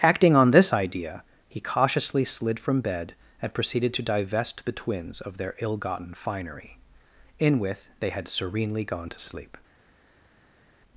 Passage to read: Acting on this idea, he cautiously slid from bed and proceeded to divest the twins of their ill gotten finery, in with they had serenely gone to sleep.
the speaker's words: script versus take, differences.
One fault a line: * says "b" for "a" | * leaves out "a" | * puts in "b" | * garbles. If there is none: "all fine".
all fine